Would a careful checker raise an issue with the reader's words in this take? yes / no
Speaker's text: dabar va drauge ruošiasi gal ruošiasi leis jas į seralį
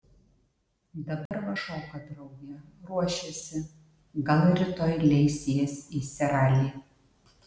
yes